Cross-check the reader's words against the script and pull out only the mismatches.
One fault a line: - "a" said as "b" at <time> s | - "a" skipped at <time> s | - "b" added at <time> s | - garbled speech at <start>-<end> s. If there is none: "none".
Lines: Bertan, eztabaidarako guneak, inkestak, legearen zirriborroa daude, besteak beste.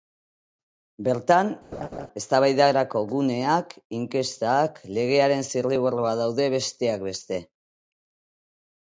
none